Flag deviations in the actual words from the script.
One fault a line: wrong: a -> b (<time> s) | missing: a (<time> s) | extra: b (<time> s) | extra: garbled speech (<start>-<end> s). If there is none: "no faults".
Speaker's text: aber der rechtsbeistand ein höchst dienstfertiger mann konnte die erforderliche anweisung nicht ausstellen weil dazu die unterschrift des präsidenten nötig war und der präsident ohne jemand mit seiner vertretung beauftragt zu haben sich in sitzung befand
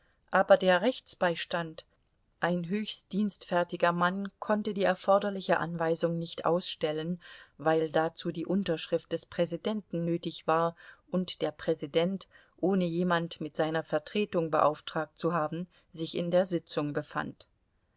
extra: der (16.3 s)